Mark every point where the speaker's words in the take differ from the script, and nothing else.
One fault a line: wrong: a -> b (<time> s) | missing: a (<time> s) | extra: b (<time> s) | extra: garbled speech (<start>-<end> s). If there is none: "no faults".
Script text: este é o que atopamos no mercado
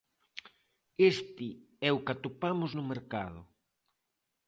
no faults